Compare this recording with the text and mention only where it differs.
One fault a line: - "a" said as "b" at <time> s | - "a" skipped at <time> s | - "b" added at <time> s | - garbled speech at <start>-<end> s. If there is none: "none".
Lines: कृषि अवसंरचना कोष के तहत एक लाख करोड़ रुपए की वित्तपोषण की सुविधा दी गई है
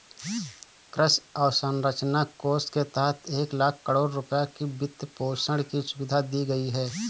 none